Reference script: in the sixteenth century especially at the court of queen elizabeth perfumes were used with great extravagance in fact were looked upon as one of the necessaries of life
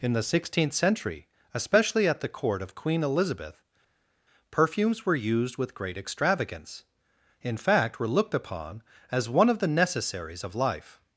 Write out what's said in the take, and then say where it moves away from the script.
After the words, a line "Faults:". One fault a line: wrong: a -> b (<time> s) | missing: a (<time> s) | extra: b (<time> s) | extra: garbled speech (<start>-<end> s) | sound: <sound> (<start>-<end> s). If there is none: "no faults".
in the sixteenth century especially at the court of queen elizabeth perfumes were used with great extravagance in fact were looked upon as one of the necessaries of life
Faults:
no faults